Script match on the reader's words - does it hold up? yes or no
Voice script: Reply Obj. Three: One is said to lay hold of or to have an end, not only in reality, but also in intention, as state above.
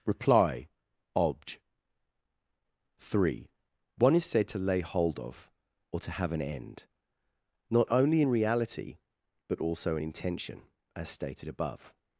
no